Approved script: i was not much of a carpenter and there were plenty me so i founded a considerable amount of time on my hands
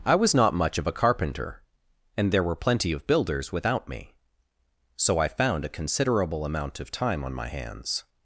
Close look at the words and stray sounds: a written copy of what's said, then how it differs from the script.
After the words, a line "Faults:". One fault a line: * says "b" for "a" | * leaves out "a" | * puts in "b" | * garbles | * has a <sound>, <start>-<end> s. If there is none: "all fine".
i was not much of a carpenter and there were plenty of builders without me so i found a considerable amount of time on my hands
Faults:
* puts in "of builders without"
* says "found" for "founded"